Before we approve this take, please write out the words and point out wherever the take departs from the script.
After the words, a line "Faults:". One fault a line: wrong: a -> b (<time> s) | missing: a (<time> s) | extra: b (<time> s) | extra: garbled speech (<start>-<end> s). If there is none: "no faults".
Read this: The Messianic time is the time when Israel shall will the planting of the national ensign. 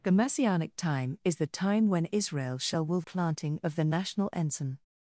The Messianic time is the time when Israel shall will planting of the national ensign.
Faults:
missing: the (3.0 s)